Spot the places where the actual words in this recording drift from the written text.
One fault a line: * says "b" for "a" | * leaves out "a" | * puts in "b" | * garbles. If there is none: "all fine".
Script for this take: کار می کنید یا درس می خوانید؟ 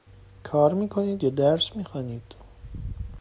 all fine